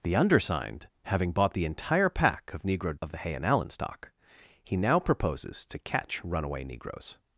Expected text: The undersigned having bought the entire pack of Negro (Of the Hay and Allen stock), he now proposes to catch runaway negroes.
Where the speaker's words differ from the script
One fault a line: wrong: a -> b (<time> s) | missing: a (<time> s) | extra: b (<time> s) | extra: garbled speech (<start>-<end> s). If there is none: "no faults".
no faults